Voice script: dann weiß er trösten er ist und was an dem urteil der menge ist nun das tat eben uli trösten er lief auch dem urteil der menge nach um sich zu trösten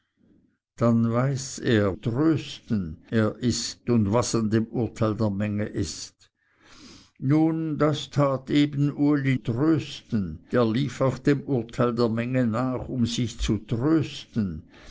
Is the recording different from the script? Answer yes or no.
no